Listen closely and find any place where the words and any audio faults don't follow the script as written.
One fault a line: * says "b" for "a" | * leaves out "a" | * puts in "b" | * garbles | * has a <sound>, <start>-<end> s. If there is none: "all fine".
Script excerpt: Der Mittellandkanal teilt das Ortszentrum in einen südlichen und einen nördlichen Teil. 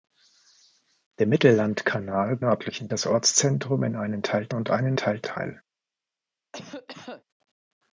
* says "nördlichen" for "teilt"
* says "teilt" for "südlichen"
* says "teilt" for "nördlichen"
* has a cough, 6.5-7.2 s